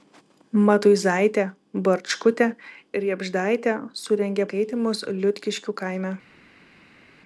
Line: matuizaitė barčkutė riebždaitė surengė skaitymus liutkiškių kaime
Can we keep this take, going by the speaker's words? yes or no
yes